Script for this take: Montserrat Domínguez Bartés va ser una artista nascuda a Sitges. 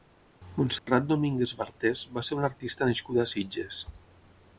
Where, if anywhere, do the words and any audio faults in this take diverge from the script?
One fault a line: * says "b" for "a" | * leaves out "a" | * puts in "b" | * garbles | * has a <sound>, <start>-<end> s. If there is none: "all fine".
* has a dropout, 0.8-0.9 s